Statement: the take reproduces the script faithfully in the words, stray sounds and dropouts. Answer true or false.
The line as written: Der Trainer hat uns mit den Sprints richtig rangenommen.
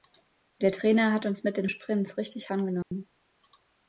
false